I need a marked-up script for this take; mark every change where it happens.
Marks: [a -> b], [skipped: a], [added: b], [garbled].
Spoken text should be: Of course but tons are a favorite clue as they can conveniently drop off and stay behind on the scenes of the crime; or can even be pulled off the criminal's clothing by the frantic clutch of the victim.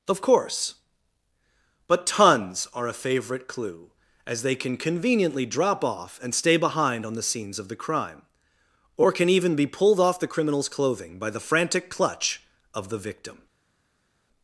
Of course but tons are a favorite clue as they can conveniently drop off and stay behind on the scenes of the crime; or can even be pulled off the criminal's clothing by the frantic clutch of the victim.